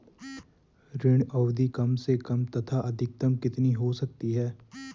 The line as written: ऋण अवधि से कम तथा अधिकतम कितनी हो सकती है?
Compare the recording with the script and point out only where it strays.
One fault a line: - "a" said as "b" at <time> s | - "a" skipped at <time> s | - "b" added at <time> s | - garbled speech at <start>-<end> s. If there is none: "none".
- "कम" added at 1.7 s